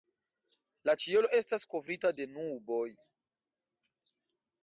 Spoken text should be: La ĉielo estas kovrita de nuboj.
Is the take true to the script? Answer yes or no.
yes